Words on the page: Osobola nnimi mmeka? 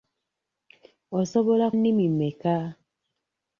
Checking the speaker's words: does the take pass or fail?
pass